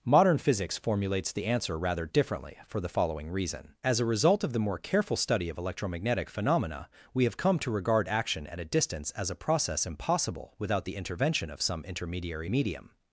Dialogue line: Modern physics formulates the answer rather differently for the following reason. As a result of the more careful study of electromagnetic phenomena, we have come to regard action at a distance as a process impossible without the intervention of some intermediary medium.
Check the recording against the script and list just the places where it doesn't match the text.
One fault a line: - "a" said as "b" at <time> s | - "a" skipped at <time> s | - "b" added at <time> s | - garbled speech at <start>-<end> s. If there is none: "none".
none